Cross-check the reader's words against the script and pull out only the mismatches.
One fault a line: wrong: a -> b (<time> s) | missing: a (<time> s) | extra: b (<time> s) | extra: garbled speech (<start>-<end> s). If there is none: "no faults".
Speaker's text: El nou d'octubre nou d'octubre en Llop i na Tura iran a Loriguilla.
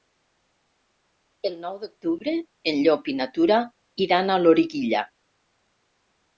missing: nou d'octubre (2.3 s)